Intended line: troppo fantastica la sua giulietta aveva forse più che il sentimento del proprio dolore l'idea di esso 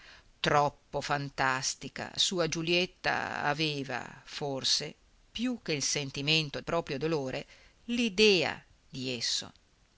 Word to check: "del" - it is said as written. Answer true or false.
false